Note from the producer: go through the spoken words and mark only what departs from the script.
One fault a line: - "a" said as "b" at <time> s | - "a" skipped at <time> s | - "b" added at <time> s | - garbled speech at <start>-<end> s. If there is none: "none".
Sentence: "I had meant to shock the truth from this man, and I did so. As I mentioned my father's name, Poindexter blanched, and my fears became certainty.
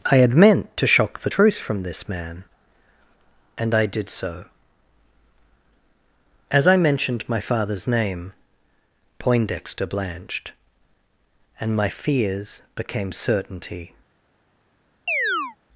none